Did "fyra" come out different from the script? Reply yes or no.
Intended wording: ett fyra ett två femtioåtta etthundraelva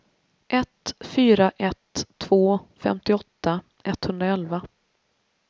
no